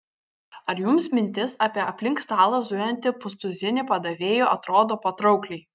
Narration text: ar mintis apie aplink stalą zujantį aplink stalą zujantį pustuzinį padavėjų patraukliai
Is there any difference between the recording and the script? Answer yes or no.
yes